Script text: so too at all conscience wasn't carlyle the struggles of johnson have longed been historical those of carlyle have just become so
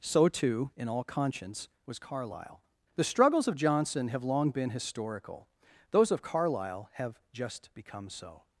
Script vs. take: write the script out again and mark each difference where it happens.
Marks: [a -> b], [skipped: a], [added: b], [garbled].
so too [at -> in] all conscience [wasn't -> was] carlyle the struggles of johnson have [longed -> long] been historical those of carlyle have just become so